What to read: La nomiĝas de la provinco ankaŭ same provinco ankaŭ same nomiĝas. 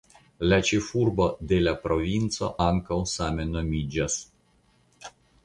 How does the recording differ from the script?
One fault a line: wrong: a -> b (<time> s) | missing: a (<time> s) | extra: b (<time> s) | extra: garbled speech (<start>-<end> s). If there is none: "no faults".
wrong: nomiĝas -> ĉefurbo (0.7 s)
missing: provinco ankaŭ same (3.5 s)